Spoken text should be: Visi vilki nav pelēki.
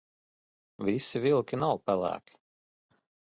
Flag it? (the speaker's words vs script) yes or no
no